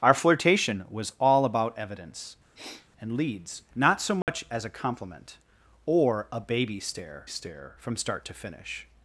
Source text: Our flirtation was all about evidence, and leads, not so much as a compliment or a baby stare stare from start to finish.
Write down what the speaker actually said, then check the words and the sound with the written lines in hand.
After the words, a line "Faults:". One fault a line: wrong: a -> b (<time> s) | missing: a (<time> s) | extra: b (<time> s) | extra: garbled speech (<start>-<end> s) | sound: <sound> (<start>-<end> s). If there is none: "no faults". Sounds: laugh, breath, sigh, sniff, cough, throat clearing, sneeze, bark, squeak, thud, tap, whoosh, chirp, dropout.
Our flirtation was all about evidence, and leads, not so much as a compliment or a baby stare stare from start to finish.
Faults:
sound: sniff (2.5-2.9 s)
sound: dropout (4.2-4.3 s)